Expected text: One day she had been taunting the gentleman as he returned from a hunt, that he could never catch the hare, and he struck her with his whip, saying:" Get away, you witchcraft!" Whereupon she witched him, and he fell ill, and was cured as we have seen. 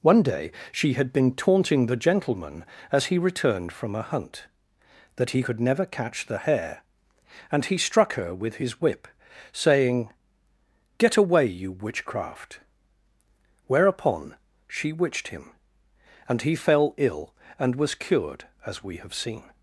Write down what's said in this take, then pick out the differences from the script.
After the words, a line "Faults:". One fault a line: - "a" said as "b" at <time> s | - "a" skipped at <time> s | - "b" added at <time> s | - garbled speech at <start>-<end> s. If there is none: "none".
One day she had been taunting the gentleman as he returned from a hunt, that he could never catch the hare, and he struck her with his whip, saying:" Get away, you witchcraft!" Whereupon she witched him, and he fell ill, and was cured as we have seen.
Faults:
none